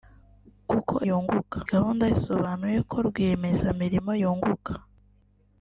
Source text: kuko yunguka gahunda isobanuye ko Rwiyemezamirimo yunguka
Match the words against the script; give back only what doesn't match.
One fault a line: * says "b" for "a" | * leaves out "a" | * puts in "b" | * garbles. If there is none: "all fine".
all fine